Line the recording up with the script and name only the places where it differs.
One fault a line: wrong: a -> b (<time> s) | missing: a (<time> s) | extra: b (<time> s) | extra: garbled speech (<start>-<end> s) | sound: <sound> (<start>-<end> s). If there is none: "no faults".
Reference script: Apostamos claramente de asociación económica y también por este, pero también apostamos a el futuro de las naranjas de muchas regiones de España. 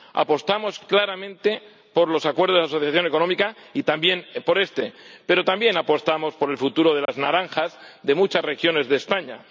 extra: por los acuerdos (1.9 s)
wrong: a -> por (6.3 s)
sound: dropout (7.1-7.1 s)